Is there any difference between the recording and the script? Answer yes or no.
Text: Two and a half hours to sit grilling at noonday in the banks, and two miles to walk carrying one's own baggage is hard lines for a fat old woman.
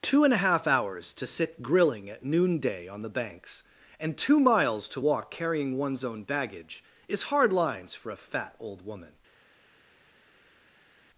yes